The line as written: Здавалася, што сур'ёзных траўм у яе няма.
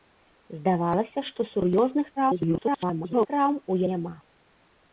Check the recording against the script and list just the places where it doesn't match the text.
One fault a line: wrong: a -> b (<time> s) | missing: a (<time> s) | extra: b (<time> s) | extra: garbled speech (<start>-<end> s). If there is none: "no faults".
extra: garbled speech (2.2-3.3 s)
missing: яе (3.8 s)